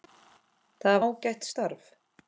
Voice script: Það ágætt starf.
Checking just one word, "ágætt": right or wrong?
right